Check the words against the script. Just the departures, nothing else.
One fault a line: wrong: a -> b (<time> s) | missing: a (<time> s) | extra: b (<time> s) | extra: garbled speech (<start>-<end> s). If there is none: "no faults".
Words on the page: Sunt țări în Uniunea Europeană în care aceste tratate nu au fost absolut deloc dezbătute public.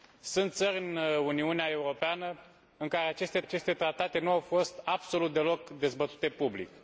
extra: aceste (3.4 s)